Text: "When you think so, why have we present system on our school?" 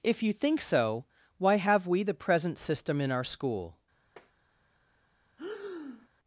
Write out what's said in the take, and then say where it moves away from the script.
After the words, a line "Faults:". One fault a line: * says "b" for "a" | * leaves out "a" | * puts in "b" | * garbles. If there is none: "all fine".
"If you think so, why have we the present system in our school?"
Faults:
* says "If" for "When"
* puts in "the"
* says "in" for "on"